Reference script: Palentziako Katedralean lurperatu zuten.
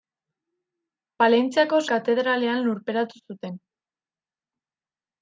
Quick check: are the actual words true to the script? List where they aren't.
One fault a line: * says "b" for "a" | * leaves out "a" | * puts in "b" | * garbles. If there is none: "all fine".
all fine